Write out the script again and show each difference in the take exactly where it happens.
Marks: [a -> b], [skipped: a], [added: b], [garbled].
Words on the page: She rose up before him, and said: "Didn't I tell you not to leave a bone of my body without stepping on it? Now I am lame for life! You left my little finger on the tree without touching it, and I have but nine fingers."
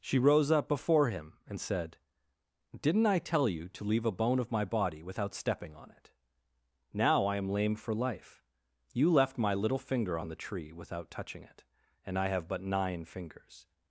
She rose up before him, and said: "Didn't I tell you [skipped: not] to leave a bone of my body without stepping on it? Now I am lame for life! You left my little finger on the tree without touching it, and I have but nine fingers."